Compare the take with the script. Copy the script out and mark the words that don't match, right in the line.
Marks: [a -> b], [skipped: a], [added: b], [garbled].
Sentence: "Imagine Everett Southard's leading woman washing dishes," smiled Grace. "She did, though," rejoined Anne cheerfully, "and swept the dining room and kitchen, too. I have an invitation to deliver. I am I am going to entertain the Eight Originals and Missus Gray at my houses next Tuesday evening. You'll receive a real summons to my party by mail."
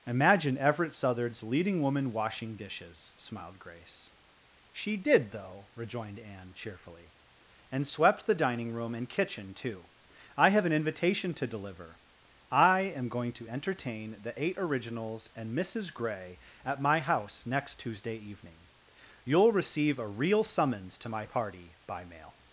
"Imagine Everett Southard's leading woman washing dishes," smiled Grace. "She did, though," rejoined Anne cheerfully, "and swept the dining room and kitchen, too. I have an invitation to deliver. I am [skipped: I am] going to entertain the Eight Originals and Missus Gray at my [houses -> house] next Tuesday evening. You'll receive a real summons to my party by mail."